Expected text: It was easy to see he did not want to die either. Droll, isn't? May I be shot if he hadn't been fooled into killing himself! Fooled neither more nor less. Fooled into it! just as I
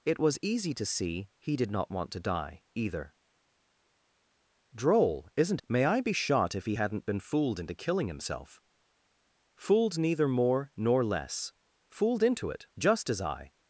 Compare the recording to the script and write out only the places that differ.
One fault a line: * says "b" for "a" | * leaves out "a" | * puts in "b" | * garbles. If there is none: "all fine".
all fine